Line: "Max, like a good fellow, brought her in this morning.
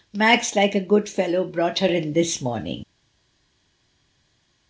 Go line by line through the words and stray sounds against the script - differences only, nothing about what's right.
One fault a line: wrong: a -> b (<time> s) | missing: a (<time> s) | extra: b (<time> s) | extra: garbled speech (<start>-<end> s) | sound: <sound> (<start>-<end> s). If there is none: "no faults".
no faults